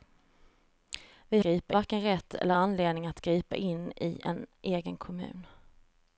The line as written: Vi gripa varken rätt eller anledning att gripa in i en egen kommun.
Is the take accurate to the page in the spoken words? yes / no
yes